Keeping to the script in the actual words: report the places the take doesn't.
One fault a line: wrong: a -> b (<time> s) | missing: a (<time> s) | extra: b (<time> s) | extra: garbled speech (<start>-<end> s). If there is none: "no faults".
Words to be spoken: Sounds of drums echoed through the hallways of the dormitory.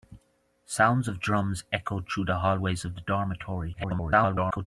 extra: garbled speech (3.7-4.7 s)